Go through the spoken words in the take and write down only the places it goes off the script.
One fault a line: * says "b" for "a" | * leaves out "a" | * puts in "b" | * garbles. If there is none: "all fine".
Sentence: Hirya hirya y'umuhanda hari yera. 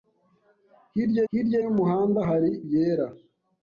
all fine